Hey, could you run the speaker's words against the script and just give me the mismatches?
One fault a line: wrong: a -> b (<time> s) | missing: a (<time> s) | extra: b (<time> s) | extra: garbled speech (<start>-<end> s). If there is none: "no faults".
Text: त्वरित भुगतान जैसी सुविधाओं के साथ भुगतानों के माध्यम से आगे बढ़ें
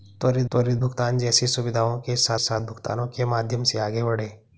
extra: त्वरित (0.5 s)
extra: साथ (2.4 s)